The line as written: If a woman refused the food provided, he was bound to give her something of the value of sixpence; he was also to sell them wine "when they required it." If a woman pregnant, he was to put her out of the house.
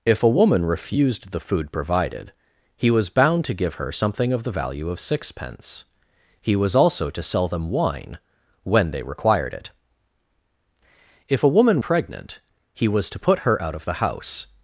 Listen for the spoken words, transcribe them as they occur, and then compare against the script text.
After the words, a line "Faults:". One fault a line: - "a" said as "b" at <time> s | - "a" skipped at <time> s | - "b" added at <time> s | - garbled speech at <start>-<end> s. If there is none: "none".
If a woman refused the food provided, he was bound to give her something of the value of sixpence; he was also to sell them wine "when they required it." If a woman pregnant, he was to put her out of the house.
Faults:
none